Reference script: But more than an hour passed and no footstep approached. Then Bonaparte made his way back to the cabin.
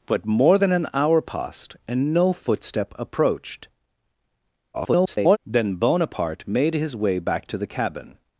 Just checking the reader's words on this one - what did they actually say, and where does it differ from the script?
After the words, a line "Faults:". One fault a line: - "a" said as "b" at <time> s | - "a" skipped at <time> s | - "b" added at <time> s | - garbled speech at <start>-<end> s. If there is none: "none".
But more than an hour passed and no footstep approached. [garbled] Then Bonaparte made his way back to the cabin.
Faults:
- garbled speech at 4.7-5.4 s